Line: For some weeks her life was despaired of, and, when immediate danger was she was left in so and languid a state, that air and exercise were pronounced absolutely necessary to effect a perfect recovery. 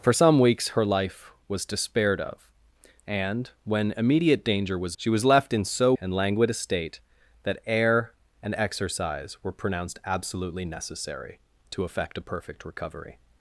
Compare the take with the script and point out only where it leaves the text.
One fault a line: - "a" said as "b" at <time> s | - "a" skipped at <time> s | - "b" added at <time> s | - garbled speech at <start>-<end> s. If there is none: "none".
none